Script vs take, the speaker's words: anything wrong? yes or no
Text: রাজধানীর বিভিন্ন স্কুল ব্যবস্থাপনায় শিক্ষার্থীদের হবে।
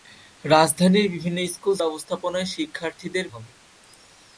no